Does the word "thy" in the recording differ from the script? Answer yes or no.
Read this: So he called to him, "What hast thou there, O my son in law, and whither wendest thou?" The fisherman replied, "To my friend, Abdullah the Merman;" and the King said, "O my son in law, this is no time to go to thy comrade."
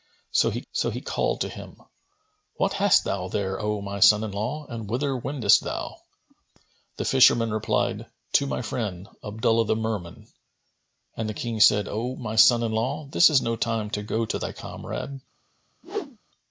no